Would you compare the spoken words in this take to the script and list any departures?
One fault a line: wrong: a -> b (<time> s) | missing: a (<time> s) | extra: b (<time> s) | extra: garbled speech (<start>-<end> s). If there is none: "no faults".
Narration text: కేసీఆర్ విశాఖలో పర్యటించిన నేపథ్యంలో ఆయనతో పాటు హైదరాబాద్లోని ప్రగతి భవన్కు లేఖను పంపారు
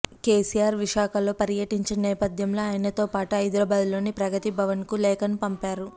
no faults